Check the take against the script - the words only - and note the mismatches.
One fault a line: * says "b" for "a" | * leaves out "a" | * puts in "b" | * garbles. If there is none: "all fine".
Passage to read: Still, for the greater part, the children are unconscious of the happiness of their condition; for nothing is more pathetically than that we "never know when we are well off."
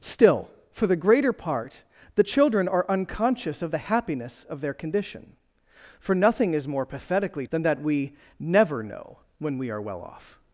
all fine